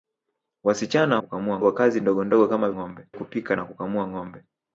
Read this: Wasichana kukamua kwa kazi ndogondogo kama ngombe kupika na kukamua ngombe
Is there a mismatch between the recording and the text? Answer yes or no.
no